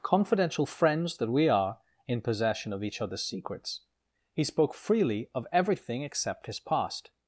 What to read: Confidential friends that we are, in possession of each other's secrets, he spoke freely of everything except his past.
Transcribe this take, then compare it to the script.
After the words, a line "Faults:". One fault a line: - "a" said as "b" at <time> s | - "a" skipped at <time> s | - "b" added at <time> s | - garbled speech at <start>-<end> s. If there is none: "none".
Confidential friends that we are, in possession of each other's secrets, he spoke freely of everything except his past.
Faults:
none